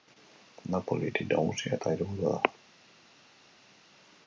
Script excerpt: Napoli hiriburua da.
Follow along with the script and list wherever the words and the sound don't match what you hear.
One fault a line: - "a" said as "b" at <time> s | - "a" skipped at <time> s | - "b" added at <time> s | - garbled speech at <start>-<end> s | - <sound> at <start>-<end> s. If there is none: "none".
- "hiri nagusia eta" added at 1.1 s